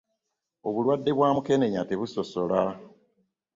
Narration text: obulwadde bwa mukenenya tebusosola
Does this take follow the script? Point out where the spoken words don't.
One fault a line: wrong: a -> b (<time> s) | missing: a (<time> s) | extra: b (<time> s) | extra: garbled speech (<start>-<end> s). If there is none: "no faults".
no faults